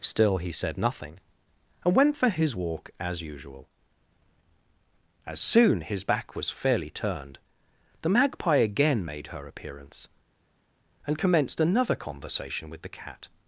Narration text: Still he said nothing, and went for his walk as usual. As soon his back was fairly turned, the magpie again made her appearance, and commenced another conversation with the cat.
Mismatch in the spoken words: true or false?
false